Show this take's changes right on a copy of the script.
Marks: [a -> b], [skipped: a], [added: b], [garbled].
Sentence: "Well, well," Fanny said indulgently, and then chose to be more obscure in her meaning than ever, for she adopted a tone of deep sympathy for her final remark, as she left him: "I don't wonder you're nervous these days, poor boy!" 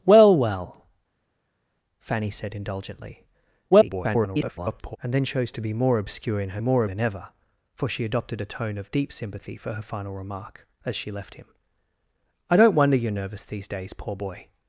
"Well, well," Fanny said indulgently, [garbled] and then chose to be more obscure in her [meaning -> more] than ever, for she adopted a tone of deep sympathy for her final remark, as she left him: "I don't wonder you're nervous these days, poor boy!"